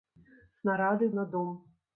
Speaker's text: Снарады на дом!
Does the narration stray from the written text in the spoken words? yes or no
no